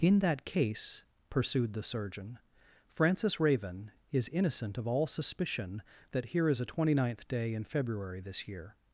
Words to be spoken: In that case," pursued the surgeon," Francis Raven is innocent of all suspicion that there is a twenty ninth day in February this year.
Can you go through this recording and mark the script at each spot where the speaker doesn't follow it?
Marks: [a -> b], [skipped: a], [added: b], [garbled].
In that case," pursued the surgeon," Francis Raven is innocent of all suspicion that [there -> here] is a twenty ninth day in February this year.